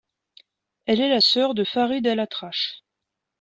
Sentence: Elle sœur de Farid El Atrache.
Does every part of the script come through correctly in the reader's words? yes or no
no